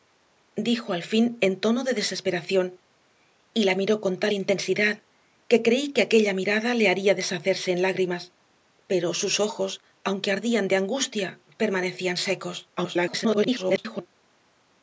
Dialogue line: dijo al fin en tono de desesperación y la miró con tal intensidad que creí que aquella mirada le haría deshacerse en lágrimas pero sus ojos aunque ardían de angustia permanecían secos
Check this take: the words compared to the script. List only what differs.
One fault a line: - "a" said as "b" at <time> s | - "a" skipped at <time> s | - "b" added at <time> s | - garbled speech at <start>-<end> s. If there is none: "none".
- garbled speech at 12.8-14.1 s